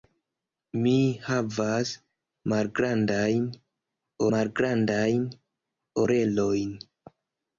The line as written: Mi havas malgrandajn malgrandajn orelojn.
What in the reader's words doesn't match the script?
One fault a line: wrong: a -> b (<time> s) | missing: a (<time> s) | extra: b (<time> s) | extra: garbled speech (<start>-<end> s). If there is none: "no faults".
no faults